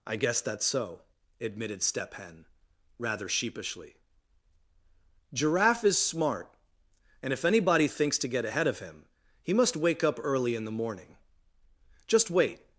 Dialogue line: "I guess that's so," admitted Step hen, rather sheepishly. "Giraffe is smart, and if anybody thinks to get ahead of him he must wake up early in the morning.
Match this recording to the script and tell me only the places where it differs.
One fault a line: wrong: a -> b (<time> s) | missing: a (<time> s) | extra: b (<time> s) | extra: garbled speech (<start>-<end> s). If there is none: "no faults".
extra: Just wait (12.1 s)